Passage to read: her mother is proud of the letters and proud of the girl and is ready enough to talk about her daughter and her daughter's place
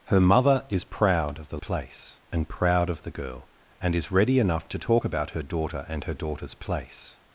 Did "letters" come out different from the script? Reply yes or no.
yes